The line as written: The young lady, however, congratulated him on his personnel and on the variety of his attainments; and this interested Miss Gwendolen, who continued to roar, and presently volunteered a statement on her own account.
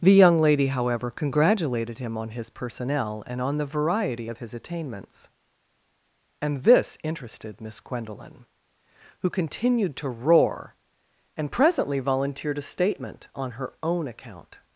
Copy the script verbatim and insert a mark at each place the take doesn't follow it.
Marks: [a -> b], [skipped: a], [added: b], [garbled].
The young lady, however, congratulated him on his personnel and on the variety of his attainments; and this interested Miss Gwendolen, who continued to roar, and presently volunteered a statement on her own account.